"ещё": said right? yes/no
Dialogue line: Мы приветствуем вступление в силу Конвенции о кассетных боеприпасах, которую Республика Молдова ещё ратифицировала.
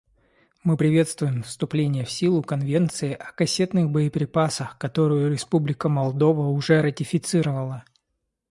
no